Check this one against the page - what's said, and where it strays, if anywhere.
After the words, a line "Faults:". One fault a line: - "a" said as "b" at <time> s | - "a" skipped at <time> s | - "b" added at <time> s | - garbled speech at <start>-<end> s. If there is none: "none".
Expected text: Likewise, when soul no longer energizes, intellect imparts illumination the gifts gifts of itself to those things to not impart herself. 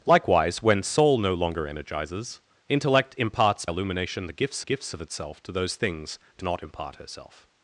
Likewise, when soul no longer energizes, intellect imparts illumination the gifts gifts of itself to those things to not impart herself.
Faults:
none